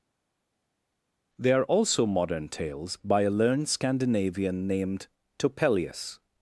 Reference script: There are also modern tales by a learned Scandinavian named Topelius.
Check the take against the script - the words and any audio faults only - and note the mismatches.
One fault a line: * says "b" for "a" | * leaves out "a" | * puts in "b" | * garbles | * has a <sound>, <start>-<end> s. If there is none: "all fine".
* says "They" for "There"